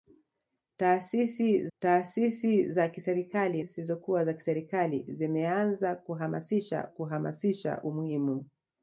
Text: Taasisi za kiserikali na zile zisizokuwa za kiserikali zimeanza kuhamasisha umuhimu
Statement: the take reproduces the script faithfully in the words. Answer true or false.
false